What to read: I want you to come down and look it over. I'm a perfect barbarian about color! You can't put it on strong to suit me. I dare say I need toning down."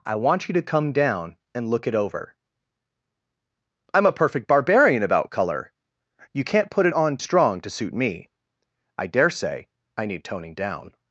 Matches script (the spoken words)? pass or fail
pass